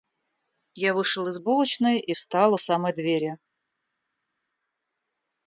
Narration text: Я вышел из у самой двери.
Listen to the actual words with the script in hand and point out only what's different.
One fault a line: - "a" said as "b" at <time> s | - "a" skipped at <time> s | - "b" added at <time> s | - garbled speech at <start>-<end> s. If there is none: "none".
- "булочной и встал" added at 1.3 s